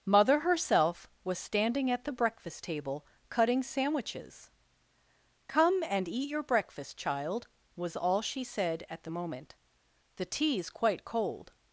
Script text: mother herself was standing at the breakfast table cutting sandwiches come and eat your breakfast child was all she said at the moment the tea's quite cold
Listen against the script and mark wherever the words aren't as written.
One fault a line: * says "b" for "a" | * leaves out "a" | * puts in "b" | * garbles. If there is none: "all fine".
all fine